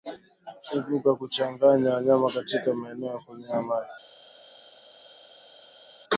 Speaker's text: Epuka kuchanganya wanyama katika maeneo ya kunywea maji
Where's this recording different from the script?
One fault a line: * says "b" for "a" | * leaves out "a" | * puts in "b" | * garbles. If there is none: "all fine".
all fine